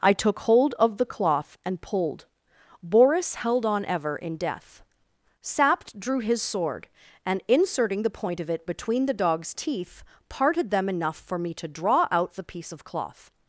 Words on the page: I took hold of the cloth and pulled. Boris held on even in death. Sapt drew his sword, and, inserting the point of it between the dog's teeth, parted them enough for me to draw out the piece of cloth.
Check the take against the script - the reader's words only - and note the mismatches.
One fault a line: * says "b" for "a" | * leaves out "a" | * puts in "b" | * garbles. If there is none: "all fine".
* says "ever" for "even"